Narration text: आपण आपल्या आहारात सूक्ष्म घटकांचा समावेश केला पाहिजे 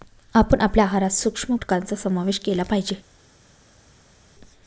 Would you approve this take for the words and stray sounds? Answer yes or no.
yes